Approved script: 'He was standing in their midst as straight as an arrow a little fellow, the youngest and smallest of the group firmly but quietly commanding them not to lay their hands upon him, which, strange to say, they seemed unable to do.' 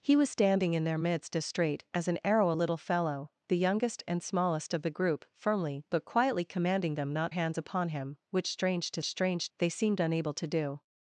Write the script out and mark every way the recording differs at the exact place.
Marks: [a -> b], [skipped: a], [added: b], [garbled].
'He was standing in their midst as straight as an arrow a little fellow, the youngest and smallest of the group firmly but quietly commanding them not [skipped: to lay their] hands upon him, which, strange to [say, -> strange] they seemed unable to do.'